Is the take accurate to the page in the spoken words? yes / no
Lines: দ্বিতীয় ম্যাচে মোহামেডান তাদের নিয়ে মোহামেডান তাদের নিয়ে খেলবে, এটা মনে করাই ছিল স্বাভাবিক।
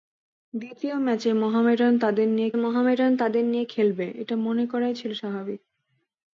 yes